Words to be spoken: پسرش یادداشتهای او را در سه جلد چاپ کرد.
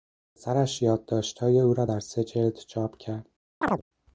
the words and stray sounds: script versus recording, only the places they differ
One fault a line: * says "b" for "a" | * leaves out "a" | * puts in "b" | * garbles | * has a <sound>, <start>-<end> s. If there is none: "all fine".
* has a chirp, 3.6-3.8 s